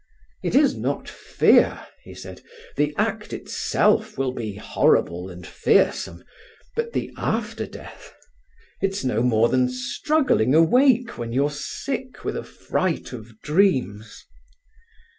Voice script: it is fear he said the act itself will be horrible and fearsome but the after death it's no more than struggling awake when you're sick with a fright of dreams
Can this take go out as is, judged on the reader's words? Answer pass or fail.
fail